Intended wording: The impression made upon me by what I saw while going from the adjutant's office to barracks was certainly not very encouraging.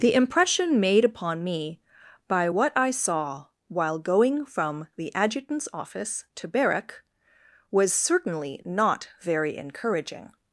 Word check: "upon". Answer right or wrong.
right